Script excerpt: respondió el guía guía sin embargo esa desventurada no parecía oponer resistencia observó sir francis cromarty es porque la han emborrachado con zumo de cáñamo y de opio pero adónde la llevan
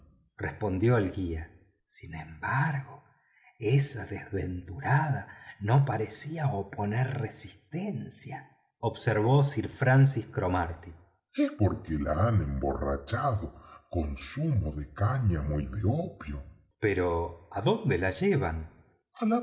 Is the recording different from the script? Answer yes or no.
yes